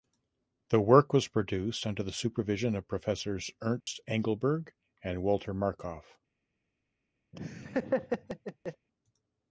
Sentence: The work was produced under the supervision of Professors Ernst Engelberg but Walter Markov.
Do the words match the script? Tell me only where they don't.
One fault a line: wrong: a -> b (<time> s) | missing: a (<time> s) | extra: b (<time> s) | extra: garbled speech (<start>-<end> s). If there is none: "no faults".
wrong: but -> and (5.0 s)